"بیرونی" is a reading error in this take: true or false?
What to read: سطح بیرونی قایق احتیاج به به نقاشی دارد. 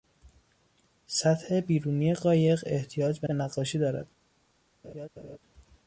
false